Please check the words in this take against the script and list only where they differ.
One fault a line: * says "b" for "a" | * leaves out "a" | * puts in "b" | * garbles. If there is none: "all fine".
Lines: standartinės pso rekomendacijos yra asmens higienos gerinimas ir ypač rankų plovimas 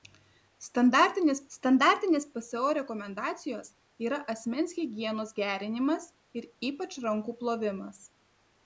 * puts in "standartinės"